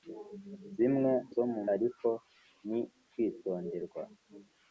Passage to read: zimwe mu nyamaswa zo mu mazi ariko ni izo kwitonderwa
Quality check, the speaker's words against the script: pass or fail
fail